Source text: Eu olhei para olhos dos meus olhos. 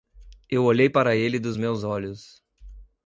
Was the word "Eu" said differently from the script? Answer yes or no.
no